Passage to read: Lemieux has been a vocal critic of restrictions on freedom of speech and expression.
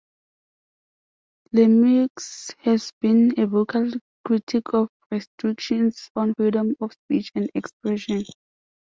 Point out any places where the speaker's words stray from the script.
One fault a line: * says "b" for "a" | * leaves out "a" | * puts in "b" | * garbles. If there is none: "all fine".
all fine